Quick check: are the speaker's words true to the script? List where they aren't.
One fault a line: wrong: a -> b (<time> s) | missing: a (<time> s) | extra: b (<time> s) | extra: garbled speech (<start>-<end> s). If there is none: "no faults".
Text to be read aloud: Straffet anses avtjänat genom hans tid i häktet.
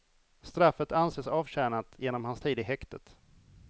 no faults